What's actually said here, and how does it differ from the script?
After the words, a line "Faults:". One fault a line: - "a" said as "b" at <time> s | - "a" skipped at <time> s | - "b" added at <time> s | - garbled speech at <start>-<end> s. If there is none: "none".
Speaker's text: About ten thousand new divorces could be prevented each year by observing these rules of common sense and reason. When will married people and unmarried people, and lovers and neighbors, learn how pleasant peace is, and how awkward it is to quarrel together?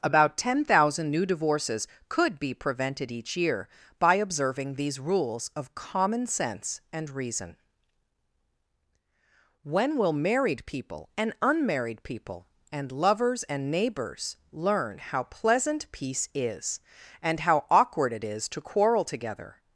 About ten thousand new divorces could be prevented each year by observing these rules of common sense and reason. When will married people and unmarried people, and lovers and neighbors, learn how pleasant peace is, and how awkward it is to quarrel together?
Faults:
none